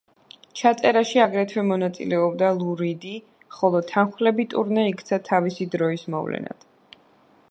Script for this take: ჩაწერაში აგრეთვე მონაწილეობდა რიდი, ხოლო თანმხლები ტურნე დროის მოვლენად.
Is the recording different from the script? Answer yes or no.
yes